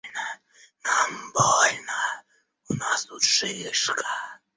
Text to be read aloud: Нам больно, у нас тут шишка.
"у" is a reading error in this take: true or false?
false